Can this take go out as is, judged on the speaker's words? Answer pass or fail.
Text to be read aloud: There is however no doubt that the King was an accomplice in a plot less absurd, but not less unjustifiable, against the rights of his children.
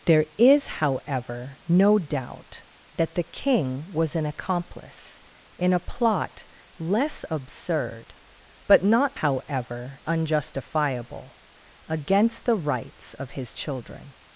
fail